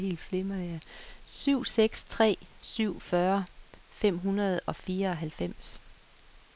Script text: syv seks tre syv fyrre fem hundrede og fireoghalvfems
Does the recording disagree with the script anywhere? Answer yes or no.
no